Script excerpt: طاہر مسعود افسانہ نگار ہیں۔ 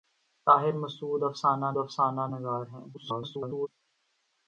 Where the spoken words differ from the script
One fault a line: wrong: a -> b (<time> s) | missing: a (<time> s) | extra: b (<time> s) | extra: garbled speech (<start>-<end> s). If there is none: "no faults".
extra: افسانہ (1.8 s)
extra: garbled speech (2.9-3.7 s)